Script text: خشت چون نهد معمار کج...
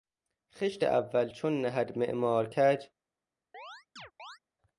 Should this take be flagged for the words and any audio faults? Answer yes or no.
yes